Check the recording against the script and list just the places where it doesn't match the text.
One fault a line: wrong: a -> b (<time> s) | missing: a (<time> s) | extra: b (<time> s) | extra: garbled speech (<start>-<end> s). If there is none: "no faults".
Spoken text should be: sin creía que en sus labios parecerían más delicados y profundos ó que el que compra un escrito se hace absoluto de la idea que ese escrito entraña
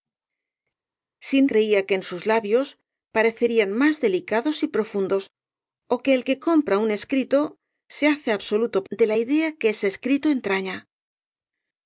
no faults